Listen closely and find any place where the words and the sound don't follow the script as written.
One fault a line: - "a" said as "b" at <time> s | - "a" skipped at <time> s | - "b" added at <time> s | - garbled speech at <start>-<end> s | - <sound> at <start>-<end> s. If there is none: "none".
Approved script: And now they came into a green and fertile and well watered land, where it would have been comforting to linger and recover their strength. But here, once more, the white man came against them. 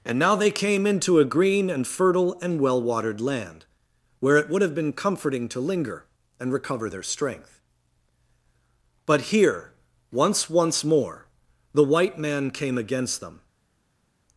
- "once" added at 10.5 s